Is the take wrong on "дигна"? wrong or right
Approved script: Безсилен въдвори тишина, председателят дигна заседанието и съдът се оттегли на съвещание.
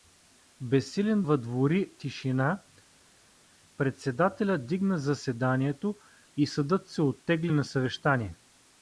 right